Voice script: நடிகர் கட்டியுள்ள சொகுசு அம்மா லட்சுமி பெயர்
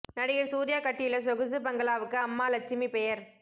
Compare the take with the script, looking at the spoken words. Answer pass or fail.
fail